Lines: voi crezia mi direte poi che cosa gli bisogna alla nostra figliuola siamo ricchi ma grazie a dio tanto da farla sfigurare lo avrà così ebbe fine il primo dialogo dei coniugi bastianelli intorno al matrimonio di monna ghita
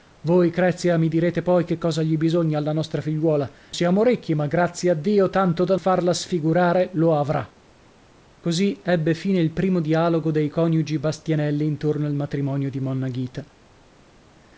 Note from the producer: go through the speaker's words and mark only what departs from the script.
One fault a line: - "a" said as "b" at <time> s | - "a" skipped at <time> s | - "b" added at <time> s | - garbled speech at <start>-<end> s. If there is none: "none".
none